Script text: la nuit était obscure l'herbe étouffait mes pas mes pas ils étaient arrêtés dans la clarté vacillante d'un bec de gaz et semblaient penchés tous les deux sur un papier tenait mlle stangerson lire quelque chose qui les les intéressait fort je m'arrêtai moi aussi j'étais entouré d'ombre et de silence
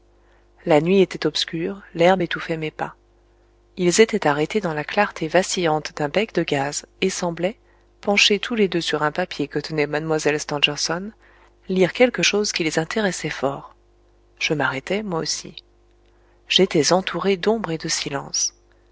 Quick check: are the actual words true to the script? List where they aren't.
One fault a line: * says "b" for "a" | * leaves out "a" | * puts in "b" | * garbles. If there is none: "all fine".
* leaves out "mes pas"
* puts in "que"
* leaves out "les"